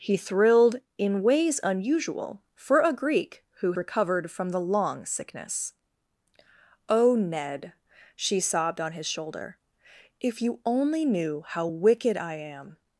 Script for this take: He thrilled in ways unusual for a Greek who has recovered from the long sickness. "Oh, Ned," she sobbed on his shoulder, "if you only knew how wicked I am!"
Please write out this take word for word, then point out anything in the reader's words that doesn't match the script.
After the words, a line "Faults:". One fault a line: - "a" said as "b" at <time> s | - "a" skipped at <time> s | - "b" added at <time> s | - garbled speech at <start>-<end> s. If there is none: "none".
He thrilled in ways unusual for a Greek who recovered from the long sickness. "Oh, Ned," she sobbed on his shoulder, "if you only knew how wicked I am!"
Faults:
- "has" skipped at 3.7 s